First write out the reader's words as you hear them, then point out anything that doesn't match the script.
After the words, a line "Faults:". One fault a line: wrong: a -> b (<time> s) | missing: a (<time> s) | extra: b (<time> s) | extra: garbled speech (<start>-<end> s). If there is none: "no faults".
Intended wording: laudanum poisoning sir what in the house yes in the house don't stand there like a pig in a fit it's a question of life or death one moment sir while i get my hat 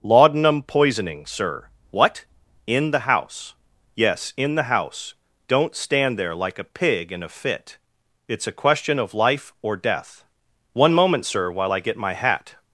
laudanum poisoning sir what in the house yes in the house don't stand there like a pig in a fit it's a question of life or death one moment sir while i get my hat
Faults:
no faults